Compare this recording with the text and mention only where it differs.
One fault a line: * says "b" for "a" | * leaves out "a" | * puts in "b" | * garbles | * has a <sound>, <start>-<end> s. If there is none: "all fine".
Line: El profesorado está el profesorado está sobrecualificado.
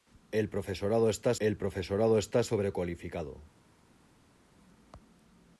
all fine